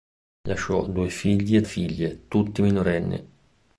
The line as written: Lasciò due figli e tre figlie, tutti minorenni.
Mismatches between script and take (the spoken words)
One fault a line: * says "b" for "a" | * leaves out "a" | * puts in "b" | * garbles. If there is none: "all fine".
* leaves out "tre"